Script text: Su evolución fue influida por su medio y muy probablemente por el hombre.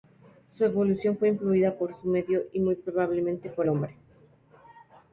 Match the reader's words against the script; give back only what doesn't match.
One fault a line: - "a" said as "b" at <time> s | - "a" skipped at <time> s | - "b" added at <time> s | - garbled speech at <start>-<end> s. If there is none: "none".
- "el" skipped at 3.7 s